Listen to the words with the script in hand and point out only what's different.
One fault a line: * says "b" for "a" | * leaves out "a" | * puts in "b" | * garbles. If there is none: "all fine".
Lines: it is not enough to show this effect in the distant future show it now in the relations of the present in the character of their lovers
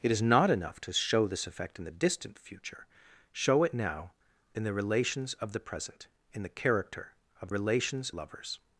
* says "relations" for "their"